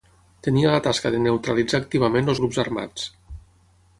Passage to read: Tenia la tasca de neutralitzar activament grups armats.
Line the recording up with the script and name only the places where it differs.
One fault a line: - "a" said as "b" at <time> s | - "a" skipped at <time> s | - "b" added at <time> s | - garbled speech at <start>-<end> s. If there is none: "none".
none